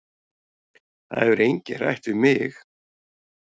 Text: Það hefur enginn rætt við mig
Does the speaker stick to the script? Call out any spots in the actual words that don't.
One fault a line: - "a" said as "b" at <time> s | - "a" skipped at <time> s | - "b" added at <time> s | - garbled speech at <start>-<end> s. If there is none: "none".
none